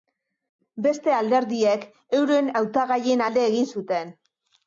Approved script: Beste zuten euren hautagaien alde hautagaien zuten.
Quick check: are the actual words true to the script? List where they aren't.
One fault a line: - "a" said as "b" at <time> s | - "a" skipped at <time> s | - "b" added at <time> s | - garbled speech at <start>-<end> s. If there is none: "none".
- "zuten" said as "alderdiek" at 1.2 s
- "hautagaien" said as "egin" at 3.5 s